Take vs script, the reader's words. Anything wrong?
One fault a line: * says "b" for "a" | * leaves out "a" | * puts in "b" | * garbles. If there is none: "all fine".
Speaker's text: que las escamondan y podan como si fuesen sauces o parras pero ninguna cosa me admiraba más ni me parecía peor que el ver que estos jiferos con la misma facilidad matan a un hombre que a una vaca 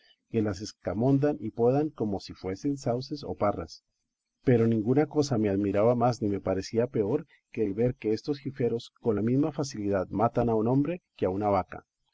all fine